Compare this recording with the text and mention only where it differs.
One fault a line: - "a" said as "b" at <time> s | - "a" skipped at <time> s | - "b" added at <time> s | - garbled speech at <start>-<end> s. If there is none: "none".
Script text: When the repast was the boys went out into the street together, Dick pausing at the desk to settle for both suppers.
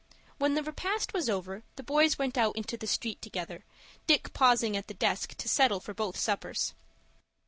- "over" added at 1.3 s